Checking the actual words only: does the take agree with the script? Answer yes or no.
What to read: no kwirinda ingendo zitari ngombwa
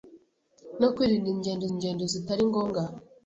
no